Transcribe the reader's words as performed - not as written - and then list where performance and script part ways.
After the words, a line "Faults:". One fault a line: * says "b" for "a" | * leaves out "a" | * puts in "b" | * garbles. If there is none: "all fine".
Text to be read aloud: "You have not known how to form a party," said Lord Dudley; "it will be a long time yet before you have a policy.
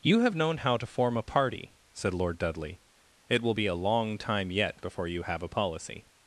"You have known how to form a party," said Lord Dudley; "it will be a long time yet before you have a policy.
Faults:
* leaves out "not"